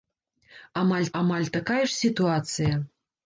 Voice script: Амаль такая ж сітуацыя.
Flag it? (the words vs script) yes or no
yes